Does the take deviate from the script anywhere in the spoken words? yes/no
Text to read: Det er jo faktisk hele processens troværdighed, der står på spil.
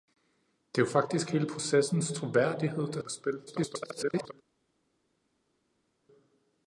yes